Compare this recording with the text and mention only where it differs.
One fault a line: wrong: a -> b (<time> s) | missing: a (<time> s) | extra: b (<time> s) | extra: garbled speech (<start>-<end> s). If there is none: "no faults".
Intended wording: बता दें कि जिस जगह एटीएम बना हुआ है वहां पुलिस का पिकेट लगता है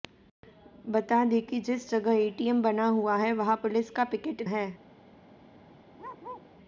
missing: लगता (4.5 s)